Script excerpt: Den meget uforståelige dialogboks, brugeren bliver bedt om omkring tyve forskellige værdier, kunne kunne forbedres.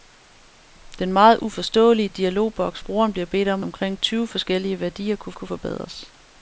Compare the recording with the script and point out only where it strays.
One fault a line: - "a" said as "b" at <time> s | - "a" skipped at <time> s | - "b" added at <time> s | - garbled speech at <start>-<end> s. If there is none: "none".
none